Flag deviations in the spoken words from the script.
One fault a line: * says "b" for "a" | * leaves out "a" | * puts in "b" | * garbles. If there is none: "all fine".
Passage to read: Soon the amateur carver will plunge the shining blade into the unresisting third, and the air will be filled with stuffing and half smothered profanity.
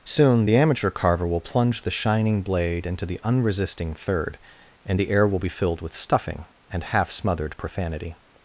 all fine